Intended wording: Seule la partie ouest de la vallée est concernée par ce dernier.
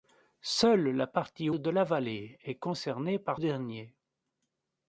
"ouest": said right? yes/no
no